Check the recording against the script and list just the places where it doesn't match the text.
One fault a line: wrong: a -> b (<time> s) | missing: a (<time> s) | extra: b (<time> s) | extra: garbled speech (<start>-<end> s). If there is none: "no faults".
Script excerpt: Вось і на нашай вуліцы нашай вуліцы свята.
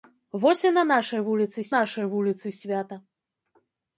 no faults